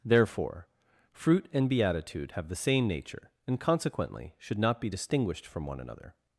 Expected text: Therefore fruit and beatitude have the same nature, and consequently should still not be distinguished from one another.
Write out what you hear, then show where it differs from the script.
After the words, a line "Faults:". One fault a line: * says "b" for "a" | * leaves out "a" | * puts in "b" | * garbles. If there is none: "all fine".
Therefore fruit and beatitude have the same nature, and consequently should not be distinguished from one another.
Faults:
* leaves out "still"